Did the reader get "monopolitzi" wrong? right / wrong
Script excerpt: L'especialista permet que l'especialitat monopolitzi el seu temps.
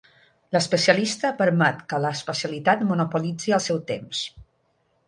right